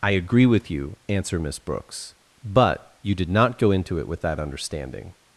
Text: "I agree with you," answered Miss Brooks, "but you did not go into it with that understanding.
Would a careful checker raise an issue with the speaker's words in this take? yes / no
yes